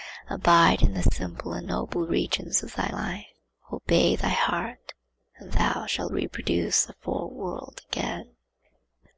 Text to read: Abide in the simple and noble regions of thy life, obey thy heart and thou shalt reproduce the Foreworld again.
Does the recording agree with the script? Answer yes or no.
yes